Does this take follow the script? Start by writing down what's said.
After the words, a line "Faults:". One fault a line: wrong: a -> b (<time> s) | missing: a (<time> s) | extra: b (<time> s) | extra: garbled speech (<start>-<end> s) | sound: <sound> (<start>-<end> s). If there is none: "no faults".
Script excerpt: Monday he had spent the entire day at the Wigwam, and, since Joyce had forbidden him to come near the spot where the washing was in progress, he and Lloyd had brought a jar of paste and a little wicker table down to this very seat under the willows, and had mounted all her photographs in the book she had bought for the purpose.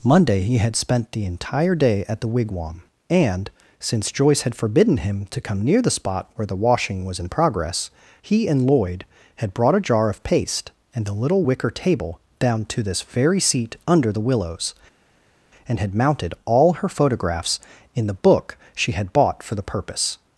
Monday he had spent the entire day at the Wigwam, and, since Joyce had forbidden him to come near the spot where the washing was in progress, he and Lloyd had brought a jar of paste and a little wicker table down to this very seat under the willows, and had mounted all her photographs in the book she had bought for the purpose.
Faults:
no faults